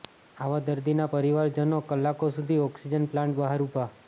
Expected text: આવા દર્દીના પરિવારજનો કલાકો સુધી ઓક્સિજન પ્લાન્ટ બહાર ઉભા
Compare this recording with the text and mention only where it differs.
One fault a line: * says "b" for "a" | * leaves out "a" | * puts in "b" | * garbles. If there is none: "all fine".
all fine